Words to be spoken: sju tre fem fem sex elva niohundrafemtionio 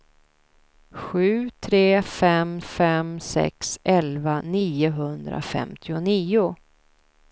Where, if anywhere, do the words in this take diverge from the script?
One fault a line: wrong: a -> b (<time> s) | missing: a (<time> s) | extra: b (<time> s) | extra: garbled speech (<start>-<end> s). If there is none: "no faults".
no faults